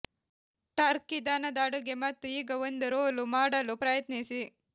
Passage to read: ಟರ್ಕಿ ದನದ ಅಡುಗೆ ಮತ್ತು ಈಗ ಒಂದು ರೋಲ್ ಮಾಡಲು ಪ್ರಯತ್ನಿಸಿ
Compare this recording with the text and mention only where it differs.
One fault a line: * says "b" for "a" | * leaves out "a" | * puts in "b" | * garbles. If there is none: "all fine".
all fine